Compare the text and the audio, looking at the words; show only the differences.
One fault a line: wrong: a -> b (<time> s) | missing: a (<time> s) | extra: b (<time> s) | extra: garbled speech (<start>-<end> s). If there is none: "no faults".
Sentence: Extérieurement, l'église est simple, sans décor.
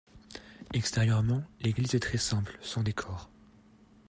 extra: très (2.0 s)